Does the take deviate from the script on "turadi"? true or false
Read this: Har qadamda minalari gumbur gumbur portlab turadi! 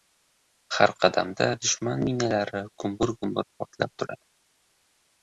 false